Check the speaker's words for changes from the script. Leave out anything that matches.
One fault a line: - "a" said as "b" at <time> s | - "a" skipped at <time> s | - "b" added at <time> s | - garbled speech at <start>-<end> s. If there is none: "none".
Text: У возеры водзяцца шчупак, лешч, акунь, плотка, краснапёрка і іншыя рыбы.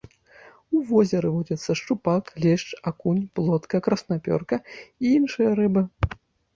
none